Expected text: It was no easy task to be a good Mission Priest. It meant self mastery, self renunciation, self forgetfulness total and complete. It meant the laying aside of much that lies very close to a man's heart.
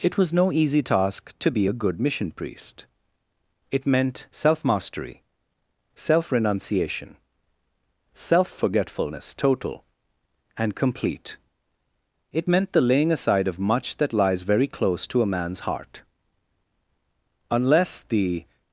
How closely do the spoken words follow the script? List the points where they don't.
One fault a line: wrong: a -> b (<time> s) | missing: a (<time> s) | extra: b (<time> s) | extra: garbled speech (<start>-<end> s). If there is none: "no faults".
extra: Unless the (17.5 s)